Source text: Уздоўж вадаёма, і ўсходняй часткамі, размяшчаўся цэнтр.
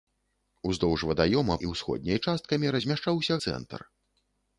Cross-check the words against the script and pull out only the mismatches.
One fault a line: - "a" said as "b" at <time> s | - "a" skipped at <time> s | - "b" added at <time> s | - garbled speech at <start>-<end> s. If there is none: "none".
none